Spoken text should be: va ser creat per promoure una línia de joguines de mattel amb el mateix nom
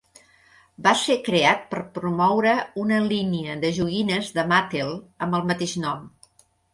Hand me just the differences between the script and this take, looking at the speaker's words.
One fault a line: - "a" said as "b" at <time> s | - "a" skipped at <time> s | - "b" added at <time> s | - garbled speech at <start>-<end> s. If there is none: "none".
none